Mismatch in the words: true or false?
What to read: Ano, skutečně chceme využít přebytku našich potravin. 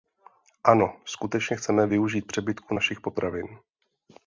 false